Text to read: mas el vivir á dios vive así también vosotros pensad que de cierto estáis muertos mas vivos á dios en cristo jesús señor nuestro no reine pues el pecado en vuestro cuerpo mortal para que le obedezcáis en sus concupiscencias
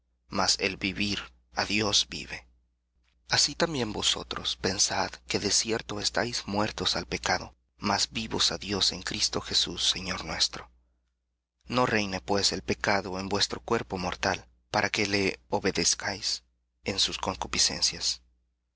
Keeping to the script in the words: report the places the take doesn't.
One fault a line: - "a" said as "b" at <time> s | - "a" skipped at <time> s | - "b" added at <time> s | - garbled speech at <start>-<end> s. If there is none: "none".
- "al pecado" added at 6.9 s